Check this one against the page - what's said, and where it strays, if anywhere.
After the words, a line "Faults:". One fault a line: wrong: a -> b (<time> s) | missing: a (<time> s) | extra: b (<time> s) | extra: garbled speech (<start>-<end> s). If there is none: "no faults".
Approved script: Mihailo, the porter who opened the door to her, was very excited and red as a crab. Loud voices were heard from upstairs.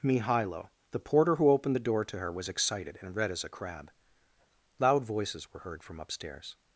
Mihailo, the porter who opened the door to her, was excited and red as a crab. Loud voices were heard from upstairs.
Faults:
missing: very (2.5 s)